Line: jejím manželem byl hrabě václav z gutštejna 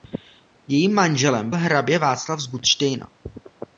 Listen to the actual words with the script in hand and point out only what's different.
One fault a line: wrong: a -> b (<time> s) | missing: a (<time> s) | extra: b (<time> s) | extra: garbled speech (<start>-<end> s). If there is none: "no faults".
missing: byl (1.5 s)